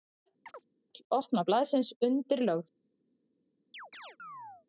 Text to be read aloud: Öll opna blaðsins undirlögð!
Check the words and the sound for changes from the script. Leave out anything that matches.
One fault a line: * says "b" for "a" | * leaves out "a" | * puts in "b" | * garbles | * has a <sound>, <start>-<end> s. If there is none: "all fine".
* has a chirp, 0.5-0.6 s
* has a chirp, 3.7-4.7 s